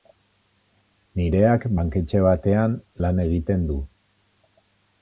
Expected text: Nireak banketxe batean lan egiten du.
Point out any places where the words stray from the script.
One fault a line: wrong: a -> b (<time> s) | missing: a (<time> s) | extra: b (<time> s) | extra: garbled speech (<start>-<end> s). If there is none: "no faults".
no faults